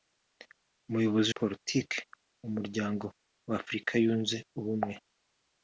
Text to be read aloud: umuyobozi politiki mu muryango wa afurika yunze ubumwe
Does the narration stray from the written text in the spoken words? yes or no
no